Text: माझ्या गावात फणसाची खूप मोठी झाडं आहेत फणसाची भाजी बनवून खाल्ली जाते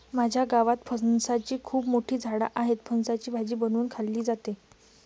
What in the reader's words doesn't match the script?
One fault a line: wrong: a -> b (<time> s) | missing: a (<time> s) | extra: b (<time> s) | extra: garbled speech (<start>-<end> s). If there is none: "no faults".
no faults